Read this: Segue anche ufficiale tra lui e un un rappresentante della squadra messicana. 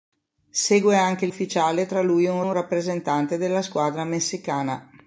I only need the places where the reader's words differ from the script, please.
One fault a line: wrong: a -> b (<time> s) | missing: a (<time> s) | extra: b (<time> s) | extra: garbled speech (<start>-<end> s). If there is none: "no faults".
no faults